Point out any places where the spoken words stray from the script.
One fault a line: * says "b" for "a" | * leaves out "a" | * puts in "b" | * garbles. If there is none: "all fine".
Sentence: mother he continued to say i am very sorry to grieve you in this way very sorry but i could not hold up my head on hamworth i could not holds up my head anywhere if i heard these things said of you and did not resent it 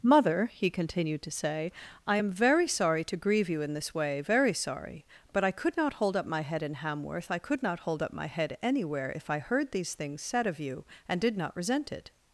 * says "in" for "on"
* says "hold" for "holds"